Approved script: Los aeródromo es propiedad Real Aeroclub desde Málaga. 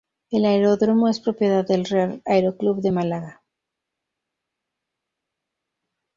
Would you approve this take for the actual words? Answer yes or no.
no